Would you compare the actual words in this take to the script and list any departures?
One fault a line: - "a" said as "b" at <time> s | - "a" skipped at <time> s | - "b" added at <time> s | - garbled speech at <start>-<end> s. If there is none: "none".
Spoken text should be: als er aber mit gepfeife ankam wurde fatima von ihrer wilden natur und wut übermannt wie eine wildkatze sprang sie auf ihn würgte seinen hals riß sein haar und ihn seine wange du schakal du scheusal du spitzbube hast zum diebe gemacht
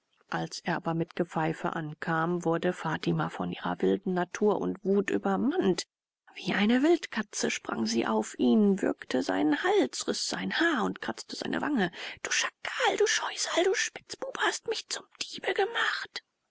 - "ihn" said as "kratzte" at 11.0 s
- "mich" added at 14.7 s